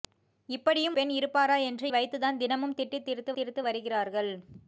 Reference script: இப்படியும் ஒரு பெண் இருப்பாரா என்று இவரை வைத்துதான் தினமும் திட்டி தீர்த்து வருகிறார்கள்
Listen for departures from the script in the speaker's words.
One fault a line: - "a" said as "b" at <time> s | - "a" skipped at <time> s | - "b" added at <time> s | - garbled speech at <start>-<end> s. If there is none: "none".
- "ஒரு" skipped at 1.0 s
- "இவரை" skipped at 1.9 s
- "தீர்த்து" added at 3.3 s